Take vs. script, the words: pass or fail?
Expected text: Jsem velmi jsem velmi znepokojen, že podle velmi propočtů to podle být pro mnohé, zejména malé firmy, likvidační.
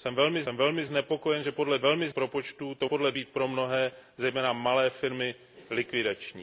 pass